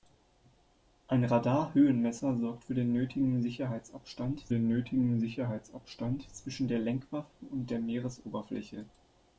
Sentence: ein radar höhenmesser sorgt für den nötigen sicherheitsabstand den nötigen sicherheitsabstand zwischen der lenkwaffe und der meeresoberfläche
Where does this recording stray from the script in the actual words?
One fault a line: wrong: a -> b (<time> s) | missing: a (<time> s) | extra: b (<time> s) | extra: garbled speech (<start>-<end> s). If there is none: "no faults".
no faults